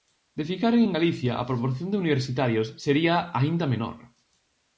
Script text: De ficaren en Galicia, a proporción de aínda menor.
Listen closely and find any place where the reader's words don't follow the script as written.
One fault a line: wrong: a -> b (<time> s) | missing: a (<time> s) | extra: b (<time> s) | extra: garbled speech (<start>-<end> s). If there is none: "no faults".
extra: universitarios sería (2.0 s)